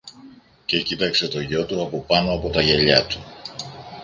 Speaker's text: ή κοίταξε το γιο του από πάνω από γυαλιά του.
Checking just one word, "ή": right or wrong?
wrong